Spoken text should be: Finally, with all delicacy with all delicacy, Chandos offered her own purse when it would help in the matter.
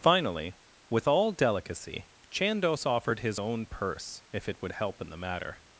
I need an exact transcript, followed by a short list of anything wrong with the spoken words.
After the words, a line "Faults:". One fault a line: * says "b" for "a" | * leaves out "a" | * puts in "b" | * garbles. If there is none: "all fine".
Finally, with all delicacy, Chandos offered his own purse if it would help in the matter.
Faults:
* leaves out "with all delicacy"
* says "his" for "her"
* says "if" for "when"